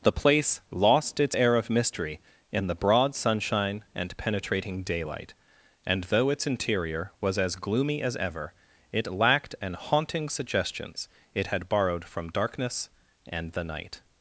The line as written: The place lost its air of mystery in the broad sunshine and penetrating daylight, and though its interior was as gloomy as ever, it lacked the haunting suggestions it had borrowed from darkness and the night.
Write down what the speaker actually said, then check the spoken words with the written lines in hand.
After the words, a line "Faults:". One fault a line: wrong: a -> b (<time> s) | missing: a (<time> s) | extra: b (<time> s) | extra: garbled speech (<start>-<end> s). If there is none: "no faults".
The place lost its air of mystery in the broad sunshine and penetrating daylight, and though its interior was as gloomy as ever, it lacked an haunting suggestions it had borrowed from darkness and the night.
Faults:
wrong: the -> an (9.6 s)